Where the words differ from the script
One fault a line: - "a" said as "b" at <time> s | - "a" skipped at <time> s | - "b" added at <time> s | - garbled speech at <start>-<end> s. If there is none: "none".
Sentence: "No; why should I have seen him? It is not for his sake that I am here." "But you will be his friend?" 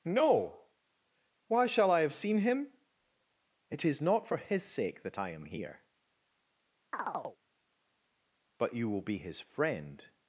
- "should" said as "shall" at 1.7 s